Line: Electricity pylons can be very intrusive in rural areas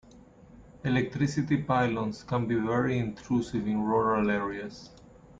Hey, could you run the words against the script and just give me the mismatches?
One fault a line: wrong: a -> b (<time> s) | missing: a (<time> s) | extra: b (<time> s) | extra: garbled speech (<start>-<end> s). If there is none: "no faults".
no faults